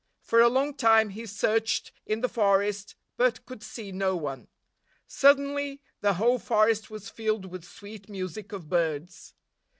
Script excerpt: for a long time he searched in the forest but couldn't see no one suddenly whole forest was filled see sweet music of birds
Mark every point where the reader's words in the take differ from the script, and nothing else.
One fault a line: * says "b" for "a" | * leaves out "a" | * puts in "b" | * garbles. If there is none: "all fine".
* says "could" for "couldn't"
* puts in "the"
* says "with" for "see"